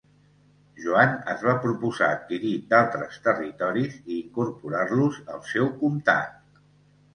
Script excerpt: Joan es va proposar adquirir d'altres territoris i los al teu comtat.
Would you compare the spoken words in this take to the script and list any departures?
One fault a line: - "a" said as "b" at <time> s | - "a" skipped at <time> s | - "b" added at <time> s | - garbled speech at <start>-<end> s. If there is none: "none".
- "incorporar" added at 4.2 s
- "teu" said as "seu" at 5.6 s